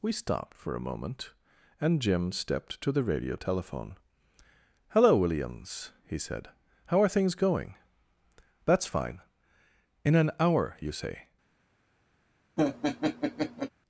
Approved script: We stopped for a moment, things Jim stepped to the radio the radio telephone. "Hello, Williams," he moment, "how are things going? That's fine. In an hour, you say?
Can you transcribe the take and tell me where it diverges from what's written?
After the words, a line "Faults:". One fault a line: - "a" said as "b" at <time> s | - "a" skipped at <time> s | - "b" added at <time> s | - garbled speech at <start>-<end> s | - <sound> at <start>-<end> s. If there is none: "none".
We stopped for a moment, and Jim stepped to the radio telephone. "Hello, Williams," he said, "how are things going? That's fine. In an hour, you say?
Faults:
- "things" said as "and" at 1.8 s
- "the radio" skipped at 3.4 s
- "moment" said as "said" at 6.2 s
- laugh at 12.6-13.7 s